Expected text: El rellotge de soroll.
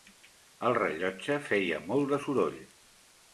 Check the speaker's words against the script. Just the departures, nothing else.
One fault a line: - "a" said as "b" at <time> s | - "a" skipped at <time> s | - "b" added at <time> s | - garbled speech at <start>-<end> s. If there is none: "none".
- "feia molt" added at 1.5 s